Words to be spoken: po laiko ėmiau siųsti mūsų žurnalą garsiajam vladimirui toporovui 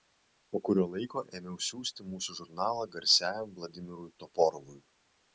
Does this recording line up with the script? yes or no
no